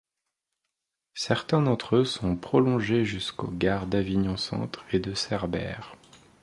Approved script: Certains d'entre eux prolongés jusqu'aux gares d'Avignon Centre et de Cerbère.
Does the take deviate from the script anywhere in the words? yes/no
yes